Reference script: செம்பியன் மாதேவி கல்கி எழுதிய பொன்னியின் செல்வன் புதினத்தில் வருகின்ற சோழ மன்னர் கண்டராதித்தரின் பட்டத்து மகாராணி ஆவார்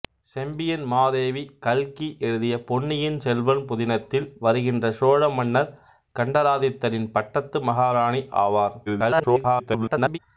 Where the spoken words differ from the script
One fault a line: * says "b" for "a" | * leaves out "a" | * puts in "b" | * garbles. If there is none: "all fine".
* garbles